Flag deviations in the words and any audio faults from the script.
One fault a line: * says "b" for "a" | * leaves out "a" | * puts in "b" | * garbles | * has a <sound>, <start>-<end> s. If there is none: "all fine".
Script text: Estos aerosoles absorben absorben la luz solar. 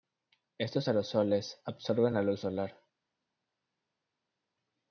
* leaves out "absorben"